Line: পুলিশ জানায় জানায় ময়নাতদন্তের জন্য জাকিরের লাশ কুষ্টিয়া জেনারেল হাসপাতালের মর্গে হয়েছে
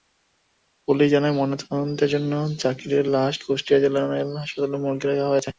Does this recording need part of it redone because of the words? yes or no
yes